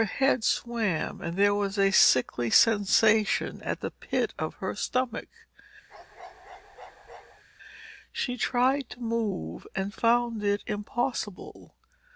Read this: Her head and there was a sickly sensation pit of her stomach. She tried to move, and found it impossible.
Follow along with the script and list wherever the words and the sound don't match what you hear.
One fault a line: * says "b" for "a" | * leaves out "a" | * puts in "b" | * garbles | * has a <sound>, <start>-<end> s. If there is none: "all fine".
* puts in "swam"
* puts in "at the"
* has a bark, 5.9-7.4 s